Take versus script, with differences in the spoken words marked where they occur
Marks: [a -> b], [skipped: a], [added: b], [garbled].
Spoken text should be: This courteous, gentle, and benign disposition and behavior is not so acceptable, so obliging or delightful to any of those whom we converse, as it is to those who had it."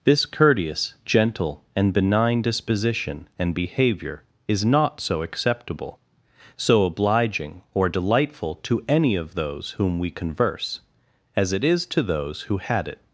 This courteous, gentle, and benign disposition and behavior is not so acceptable, so obliging or delightful to any of those whom we converse, as it is to those who had it."